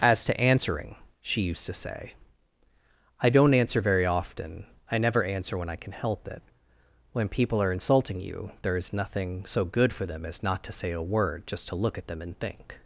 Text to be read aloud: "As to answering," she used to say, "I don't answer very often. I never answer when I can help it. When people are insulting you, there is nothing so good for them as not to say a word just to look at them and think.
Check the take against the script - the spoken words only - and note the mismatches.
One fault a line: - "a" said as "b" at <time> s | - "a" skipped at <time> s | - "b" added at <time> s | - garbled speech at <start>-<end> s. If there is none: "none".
none